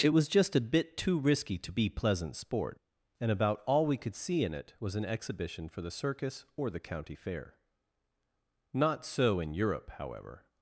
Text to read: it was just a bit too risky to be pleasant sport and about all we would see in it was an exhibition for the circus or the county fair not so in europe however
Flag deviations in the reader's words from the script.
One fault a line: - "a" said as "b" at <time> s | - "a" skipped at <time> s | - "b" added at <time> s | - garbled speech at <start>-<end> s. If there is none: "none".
- "would" said as "could" at 4.0 s